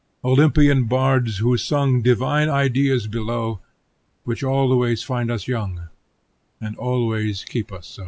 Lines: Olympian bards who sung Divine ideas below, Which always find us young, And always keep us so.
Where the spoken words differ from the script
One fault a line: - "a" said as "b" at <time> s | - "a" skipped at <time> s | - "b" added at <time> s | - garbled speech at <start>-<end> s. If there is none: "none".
none